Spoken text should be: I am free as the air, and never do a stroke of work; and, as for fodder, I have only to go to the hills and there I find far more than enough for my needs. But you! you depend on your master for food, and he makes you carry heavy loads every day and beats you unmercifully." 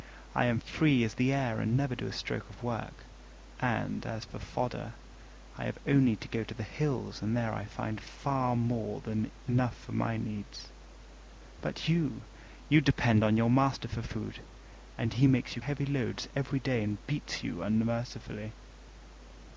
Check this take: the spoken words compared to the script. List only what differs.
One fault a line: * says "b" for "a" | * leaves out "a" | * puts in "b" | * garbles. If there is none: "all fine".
* leaves out "carry"